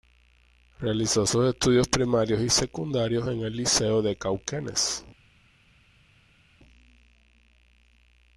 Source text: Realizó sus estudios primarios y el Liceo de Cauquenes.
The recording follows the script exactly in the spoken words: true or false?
false